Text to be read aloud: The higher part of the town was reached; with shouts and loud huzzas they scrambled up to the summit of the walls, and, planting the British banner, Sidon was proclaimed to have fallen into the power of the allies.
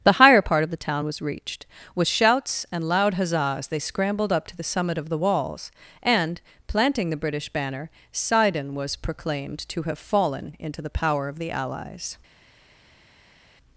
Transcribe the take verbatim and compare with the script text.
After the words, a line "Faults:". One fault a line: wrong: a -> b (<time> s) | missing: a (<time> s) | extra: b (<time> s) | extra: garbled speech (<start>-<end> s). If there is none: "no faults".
The higher part of the town was reached; with shouts and loud huzzas they scrambled up to the summit of the walls, and, planting the British banner, Sidon was proclaimed to have fallen into the power of the allies.
Faults:
no faults